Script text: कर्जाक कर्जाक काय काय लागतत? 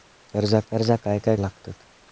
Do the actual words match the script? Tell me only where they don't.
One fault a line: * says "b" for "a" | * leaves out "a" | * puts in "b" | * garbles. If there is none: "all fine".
all fine